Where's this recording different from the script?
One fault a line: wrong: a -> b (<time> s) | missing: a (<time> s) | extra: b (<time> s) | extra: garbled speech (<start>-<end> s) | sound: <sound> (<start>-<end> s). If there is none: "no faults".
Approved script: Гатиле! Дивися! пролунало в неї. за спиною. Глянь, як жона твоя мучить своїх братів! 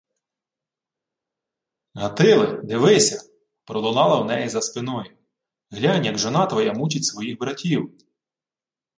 no faults